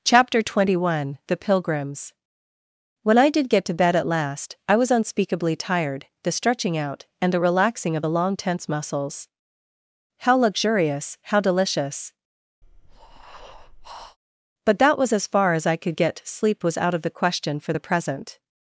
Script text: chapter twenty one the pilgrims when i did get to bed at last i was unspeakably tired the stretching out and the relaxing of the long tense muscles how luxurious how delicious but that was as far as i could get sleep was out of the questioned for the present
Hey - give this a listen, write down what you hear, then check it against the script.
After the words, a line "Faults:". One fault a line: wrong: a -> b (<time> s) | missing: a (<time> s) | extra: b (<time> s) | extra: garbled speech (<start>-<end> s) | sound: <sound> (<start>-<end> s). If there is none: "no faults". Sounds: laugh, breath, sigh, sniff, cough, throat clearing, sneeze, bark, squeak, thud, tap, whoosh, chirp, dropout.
chapter twenty one the pilgrims when i did get to bed at last i was unspeakably tired the stretching out and the relaxing of the long tense muscles how luxurious how delicious but that was as far as i could get sleep was out of the question for the present
Faults:
sound: breath (12.6-14.2 s)
wrong: questioned -> question (17.1 s)